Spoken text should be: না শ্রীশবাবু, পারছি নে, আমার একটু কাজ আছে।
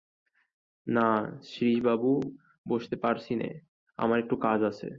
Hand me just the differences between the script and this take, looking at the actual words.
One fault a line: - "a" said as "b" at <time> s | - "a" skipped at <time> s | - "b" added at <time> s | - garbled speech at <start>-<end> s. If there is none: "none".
- "বসতে" added at 2.6 s